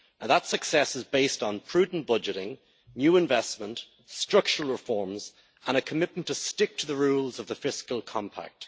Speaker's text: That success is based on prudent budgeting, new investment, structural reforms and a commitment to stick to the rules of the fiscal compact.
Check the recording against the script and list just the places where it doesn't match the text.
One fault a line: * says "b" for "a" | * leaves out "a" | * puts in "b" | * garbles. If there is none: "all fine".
all fine